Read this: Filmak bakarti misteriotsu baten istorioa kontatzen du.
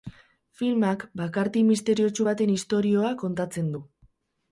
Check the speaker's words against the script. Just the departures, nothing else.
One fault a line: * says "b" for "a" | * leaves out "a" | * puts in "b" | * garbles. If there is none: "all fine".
all fine